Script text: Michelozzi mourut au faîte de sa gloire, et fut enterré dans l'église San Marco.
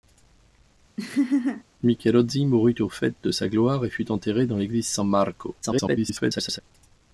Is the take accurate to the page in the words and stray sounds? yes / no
no